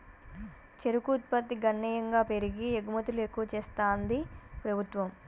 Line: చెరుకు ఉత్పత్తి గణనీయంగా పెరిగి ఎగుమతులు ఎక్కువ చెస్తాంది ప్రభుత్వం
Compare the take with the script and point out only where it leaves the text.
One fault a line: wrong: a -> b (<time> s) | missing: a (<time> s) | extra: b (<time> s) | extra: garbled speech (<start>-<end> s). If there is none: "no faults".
no faults